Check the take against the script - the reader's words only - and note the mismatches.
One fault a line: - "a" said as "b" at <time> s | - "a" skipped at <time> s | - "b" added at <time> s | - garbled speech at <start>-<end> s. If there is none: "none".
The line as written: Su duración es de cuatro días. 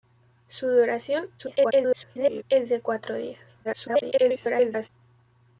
- garbled speech at 1.4-2.4 s
- garbled speech at 3.6-4.9 s